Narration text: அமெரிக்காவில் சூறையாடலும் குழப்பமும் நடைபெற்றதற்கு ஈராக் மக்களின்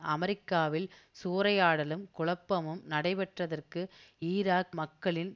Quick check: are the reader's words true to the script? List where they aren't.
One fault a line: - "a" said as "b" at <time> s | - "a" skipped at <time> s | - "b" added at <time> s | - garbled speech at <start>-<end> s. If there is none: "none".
none